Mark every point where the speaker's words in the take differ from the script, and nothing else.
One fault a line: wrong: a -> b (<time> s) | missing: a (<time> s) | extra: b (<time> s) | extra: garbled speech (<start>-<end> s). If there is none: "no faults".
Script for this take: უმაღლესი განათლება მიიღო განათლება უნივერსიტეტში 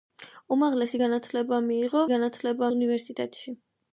no faults